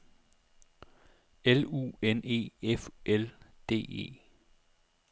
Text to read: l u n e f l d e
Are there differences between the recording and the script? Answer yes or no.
no